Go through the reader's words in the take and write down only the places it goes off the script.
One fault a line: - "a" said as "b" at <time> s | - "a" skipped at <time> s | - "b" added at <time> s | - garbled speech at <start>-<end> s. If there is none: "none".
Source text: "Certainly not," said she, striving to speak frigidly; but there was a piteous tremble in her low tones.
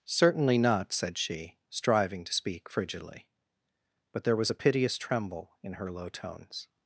none